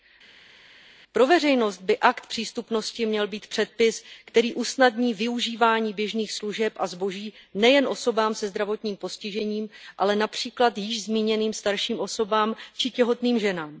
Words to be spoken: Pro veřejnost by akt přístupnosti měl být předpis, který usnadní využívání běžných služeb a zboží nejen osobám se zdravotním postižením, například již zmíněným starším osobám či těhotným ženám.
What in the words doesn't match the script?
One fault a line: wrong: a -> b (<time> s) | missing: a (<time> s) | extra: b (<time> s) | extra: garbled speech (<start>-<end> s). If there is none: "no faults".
extra: ale (10.0 s)